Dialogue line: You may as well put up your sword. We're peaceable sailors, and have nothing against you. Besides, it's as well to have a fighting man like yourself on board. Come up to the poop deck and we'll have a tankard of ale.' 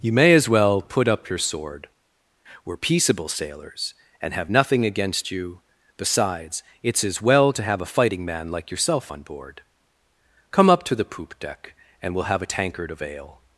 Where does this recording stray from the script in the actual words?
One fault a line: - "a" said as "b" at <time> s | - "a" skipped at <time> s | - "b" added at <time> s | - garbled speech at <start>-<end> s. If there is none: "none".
none